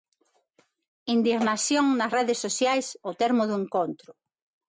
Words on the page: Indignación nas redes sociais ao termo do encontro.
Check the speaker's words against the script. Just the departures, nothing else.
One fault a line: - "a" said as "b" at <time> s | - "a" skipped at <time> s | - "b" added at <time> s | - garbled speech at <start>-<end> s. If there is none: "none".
none